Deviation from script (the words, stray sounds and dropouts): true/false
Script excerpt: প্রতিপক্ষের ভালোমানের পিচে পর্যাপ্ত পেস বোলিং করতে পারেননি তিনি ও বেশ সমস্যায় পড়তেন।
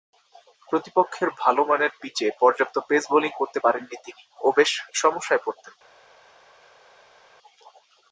false